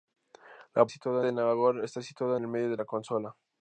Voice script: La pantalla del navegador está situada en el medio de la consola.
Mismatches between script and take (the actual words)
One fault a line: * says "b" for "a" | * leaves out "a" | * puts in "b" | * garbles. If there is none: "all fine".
* says "situada" for "pantalla"
* leaves out "en"